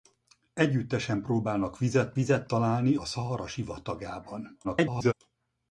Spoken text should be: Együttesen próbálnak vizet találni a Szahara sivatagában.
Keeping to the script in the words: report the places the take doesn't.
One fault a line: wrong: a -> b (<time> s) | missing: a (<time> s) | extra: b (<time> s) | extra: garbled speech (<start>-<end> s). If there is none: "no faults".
extra: vizet (2.1 s)
extra: garbled speech (4.6-5.1 s)